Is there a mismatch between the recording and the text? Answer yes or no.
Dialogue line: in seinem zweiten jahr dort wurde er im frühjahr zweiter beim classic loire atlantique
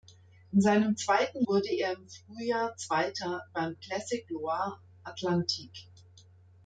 yes